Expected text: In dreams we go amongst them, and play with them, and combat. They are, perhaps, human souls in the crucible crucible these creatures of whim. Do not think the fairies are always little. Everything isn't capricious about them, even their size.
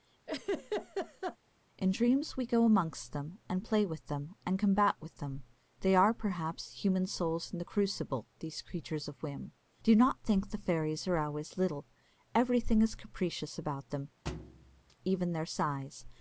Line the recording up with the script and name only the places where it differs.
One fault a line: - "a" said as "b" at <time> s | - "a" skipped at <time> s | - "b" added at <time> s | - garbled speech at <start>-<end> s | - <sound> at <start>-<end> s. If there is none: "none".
- laugh at 0.3-1.4 s
- "with them" added at 5.0 s
- "crucible" skipped at 8.3 s
- "isn't" said as "is" at 12.8 s
- thud at 14.3-15.0 s